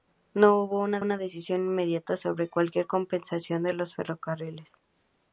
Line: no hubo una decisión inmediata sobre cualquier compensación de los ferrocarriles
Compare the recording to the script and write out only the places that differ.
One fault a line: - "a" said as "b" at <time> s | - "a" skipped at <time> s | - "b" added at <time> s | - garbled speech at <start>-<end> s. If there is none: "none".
- "una" added at 1.0 s